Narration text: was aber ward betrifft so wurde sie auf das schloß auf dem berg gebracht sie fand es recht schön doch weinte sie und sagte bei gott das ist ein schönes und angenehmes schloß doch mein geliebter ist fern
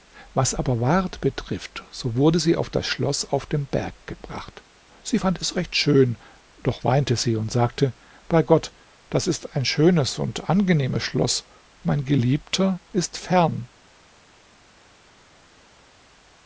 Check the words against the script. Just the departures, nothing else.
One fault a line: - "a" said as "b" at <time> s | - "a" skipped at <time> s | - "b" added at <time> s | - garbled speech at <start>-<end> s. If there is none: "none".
- "doch" skipped at 11.4 s